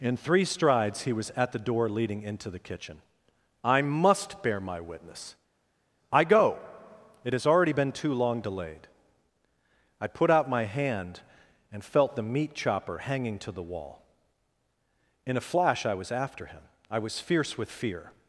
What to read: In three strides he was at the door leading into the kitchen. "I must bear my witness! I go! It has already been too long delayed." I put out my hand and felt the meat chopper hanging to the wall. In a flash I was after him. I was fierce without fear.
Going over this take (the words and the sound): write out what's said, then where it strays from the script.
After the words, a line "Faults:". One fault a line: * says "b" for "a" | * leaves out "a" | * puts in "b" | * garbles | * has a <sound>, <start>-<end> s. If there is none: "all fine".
In three strides he was at the door leading into the kitchen. "I must bear my witness! I go! It has already been too long delayed." I put out my hand and felt the meat chopper hanging to the wall. In a flash I was after him. I was fierce with fear.
Faults:
* says "with" for "without"